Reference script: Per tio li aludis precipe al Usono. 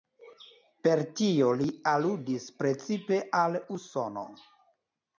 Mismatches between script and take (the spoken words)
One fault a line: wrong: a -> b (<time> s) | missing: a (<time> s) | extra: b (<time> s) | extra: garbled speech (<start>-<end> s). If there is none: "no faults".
no faults